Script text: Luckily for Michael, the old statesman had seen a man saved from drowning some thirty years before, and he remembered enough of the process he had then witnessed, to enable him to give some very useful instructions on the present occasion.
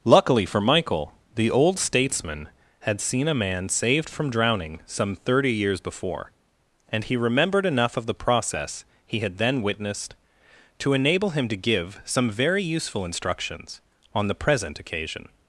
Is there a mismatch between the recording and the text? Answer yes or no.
no